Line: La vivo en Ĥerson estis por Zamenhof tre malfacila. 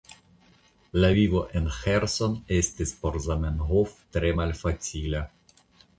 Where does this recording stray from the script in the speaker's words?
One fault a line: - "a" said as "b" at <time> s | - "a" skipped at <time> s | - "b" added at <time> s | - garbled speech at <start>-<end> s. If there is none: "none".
none